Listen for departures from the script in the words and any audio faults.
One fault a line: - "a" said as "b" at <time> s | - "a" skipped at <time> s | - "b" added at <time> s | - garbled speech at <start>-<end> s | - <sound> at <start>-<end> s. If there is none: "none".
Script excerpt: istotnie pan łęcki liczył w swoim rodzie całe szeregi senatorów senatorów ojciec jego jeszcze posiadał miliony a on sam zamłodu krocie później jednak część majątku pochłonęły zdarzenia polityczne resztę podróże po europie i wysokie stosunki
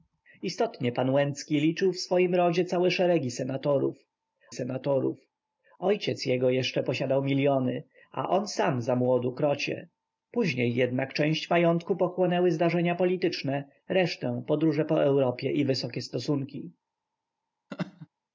- laugh at 17.7-18.1 s